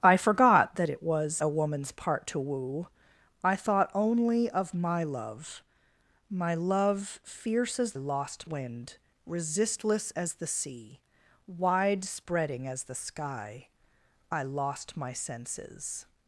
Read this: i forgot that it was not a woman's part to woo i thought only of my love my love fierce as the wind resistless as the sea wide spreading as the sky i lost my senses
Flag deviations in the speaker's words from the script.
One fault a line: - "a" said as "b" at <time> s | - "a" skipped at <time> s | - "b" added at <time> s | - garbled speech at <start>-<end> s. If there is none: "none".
- "not" skipped at 1.4 s
- "the" said as "lost" at 7.9 s